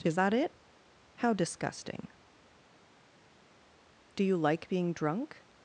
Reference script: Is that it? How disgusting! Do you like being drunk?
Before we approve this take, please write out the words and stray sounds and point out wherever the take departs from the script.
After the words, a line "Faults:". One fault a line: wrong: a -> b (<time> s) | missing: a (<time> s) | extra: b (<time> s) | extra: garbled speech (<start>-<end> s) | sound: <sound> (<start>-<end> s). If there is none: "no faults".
Is that it? How disgusting! Do you like being drunk?
Faults:
no faults